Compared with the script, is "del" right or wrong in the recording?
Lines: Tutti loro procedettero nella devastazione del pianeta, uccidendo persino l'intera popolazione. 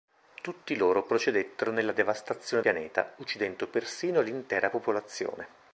wrong